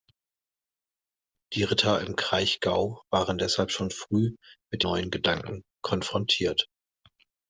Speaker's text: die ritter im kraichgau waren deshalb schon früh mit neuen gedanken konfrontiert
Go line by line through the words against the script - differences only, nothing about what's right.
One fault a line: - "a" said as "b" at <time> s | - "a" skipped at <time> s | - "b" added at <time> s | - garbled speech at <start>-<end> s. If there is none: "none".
none